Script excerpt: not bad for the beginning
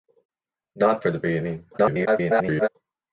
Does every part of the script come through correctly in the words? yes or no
no